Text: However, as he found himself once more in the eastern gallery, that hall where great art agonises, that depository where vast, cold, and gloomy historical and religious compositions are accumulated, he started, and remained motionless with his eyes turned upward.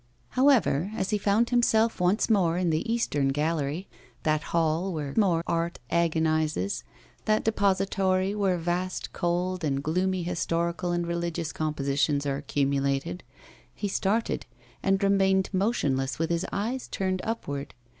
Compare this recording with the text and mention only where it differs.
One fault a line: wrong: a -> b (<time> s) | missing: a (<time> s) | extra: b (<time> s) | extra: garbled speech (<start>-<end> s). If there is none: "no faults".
wrong: great -> more (5.1 s)